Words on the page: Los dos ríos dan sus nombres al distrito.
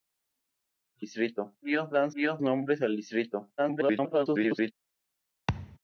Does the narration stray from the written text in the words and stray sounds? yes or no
yes